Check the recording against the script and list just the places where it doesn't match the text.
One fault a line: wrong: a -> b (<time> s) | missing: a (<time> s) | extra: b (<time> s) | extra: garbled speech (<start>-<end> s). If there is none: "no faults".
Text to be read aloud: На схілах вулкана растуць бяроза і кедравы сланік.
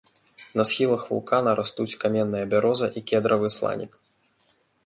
extra: каменная (2.0 s)